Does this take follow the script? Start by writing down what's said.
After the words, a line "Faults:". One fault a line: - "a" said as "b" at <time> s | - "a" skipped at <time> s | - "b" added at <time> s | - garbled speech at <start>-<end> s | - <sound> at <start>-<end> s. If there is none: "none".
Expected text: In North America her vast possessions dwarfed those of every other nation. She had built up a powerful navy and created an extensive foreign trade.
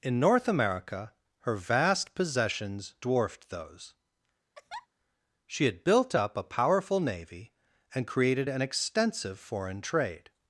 In North America her vast possessions dwarfed those. She had built up a powerful navy and created an extensive foreign trade.
Faults:
- "of every other nation" skipped at 3.9 s
- laugh at 4.5-4.9 s